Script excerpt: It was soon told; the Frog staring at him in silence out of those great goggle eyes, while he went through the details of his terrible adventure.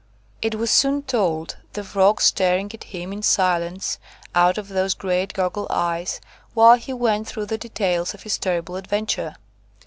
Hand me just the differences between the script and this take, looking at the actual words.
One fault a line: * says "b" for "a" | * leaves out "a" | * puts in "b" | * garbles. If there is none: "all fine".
all fine